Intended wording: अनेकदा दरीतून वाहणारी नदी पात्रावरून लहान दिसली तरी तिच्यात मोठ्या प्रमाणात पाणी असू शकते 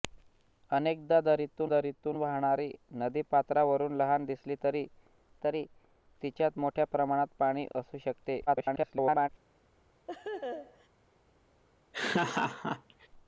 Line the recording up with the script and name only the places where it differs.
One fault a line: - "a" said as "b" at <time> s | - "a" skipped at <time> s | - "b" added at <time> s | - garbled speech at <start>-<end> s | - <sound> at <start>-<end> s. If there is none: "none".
- "दरीतून" added at 1.7 s
- "तरी" added at 5.4 s
- garbled speech at 8.5-9.3 s
- laugh at 10.1-10.9 s
- laugh at 11.9-13.1 s